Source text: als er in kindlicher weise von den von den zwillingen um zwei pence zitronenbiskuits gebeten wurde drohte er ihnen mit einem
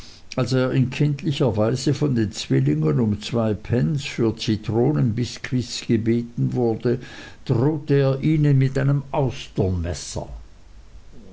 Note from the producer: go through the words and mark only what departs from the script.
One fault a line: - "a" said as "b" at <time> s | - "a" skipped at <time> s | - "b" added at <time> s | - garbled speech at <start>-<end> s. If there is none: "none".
- "von den" skipped at 2.3 s
- "für" added at 4.0 s